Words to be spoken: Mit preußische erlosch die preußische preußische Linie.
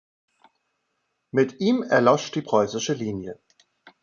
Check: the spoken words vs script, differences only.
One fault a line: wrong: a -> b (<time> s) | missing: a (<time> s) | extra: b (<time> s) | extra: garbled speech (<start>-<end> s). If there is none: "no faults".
wrong: preußische -> ihm (1.6 s)
missing: preußische (2.9 s)